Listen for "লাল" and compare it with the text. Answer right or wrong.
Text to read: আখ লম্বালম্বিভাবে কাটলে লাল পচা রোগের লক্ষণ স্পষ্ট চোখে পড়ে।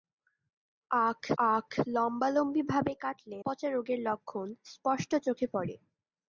wrong